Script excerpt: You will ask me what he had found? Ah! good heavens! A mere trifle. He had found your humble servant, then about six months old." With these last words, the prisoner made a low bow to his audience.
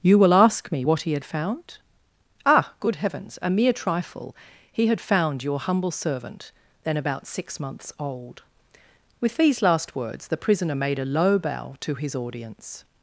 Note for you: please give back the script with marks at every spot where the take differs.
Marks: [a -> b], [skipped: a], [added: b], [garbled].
You will ask me what he had found? Ah! good heavens! A mere trifle. He had found your humble servant, then about six months old." With these last words, the prisoner made a low bow to his audience.